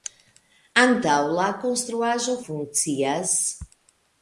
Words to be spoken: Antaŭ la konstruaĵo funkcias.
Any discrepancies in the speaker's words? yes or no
no